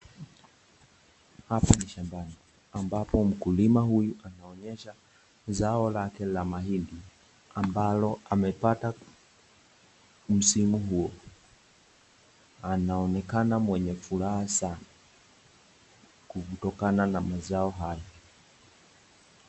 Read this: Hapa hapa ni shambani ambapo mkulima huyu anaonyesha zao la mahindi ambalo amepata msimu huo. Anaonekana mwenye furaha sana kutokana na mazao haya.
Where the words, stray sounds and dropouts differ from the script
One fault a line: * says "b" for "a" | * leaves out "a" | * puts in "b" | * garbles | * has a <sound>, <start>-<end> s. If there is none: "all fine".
* leaves out "hapa"
* puts in "lake"